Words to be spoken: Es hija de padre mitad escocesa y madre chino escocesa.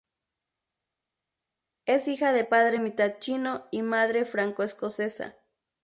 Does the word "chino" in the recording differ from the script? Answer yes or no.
yes